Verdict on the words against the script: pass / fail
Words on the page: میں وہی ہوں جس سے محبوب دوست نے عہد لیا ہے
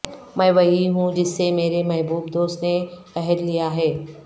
fail